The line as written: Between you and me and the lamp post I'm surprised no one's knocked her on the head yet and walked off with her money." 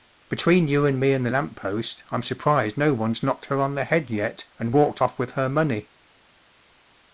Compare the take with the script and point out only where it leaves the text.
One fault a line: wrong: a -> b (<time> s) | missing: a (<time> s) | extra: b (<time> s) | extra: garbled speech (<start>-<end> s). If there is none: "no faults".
no faults